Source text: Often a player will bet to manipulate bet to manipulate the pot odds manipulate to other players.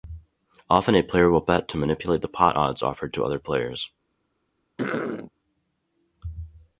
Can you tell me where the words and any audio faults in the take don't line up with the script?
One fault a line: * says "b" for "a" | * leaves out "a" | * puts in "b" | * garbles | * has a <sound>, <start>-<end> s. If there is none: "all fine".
* leaves out "bet to manipulate"
* says "offered" for "manipulate"
* has a throat clearing, 4.8-5.3 s